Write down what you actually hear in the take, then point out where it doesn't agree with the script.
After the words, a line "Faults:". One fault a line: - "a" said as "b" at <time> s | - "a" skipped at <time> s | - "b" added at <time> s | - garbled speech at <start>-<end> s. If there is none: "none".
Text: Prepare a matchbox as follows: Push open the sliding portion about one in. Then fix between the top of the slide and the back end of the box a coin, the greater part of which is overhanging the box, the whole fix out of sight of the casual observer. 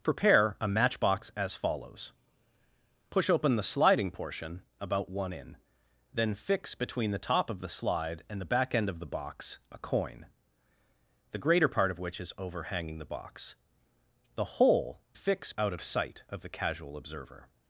Prepare a matchbox as follows: Push open the sliding portion about one in. Then fix between the top of the slide and the back end of the box a coin, the greater part of which is overhanging the box, the whole fix out of sight of the casual observer.
Faults:
none